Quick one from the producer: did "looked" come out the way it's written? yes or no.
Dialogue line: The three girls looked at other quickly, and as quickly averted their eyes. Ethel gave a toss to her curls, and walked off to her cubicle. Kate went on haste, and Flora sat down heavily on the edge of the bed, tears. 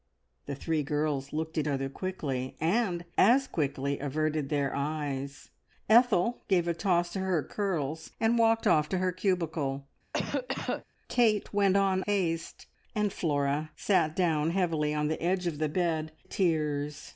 yes